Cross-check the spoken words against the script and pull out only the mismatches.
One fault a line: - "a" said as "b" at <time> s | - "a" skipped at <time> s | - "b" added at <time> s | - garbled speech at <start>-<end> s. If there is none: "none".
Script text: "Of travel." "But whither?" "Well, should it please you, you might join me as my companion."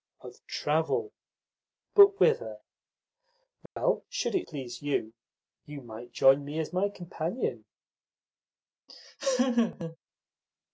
none